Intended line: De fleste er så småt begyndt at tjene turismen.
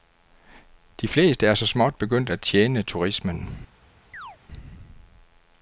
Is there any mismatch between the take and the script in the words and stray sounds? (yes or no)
yes